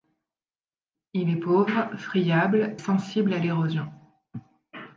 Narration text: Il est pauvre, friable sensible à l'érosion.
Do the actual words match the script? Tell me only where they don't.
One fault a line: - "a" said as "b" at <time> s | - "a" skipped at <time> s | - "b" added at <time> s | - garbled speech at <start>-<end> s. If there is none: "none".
none